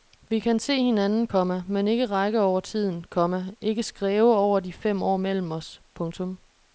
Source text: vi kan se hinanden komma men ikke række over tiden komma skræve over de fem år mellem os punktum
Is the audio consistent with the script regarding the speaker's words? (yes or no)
no